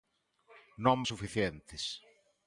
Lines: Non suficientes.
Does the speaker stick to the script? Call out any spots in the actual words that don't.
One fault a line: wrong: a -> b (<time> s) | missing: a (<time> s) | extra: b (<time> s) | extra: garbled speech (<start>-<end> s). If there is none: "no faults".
no faults